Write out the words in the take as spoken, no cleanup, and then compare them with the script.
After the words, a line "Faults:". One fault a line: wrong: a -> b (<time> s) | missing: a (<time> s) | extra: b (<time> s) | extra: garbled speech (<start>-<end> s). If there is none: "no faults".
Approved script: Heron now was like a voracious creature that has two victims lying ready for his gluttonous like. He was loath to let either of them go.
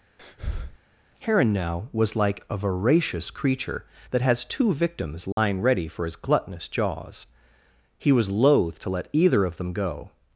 Heron now was like a voracious creature that has two victims lying ready for his gluttonous jaws. He was loath to let either of them go.
Faults:
wrong: like -> jaws (6.7 s)